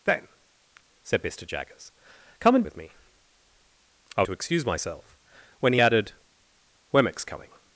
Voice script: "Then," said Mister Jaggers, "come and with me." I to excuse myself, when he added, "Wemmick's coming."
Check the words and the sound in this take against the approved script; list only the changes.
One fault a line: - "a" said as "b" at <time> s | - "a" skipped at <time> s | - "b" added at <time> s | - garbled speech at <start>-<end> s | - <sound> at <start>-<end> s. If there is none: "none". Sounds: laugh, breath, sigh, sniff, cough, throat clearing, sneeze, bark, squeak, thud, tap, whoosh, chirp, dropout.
none